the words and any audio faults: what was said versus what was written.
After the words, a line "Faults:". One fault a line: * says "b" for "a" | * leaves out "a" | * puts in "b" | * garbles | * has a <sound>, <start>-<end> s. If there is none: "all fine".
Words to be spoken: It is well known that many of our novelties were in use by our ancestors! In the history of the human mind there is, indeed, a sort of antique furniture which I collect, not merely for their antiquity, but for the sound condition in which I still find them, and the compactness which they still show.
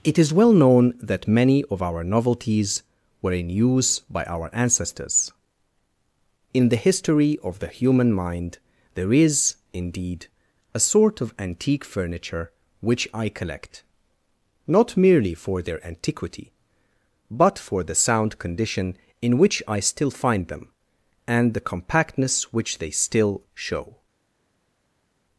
It is well known that many of our novelties were in use by our ancestors! In the history of the human mind there is, indeed, a sort of antique furniture which I collect, not merely for their antiquity, but for the sound condition in which I still find them, and the compactness which they still show.
Faults:
all fine